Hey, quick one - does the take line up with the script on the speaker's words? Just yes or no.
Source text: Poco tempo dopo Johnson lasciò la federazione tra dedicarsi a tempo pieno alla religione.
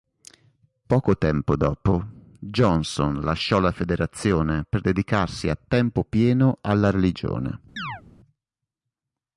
no